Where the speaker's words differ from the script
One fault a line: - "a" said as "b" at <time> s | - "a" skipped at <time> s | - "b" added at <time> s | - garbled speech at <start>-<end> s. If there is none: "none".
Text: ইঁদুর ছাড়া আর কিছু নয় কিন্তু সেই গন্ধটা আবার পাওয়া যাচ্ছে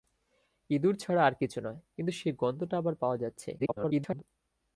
- garbled speech at 3.6-4.2 s